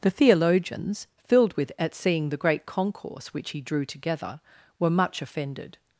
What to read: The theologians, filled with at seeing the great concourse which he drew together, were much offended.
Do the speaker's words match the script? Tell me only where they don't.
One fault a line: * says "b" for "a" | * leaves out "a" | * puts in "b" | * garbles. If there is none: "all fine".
all fine